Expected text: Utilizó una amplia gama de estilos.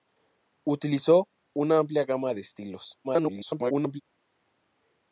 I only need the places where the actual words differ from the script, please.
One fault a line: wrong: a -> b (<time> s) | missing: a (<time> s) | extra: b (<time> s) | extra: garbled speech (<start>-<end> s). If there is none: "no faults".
extra: garbled speech (3.0-4.0 s)